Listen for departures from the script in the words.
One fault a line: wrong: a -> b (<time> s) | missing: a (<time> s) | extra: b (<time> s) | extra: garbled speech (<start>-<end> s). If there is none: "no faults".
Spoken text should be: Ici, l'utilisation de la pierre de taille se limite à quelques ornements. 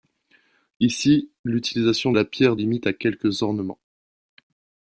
missing: de (2.1 s)
missing: de taille se (2.6 s)